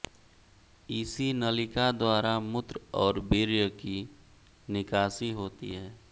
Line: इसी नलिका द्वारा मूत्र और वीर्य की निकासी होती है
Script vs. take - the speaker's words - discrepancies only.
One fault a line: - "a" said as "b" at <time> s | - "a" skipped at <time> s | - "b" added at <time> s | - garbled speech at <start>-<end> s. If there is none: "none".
none